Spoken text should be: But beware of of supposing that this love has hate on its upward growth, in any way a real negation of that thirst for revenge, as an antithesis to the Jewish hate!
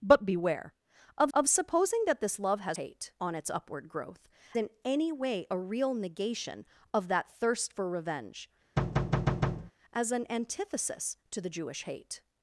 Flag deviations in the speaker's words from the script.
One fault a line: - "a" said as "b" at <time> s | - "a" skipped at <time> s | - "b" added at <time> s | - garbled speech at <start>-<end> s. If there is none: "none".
none